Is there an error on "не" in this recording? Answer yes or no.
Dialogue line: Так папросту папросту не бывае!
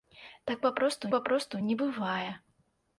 no